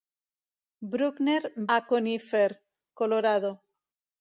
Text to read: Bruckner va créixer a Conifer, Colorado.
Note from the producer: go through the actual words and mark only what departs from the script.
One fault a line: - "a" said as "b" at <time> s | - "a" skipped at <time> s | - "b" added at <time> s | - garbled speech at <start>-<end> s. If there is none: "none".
- "va créixer" skipped at 1.4 s